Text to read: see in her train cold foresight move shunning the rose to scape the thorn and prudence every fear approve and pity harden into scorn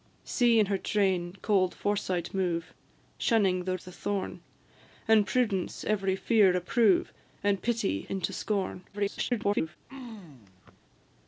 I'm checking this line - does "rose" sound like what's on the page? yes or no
no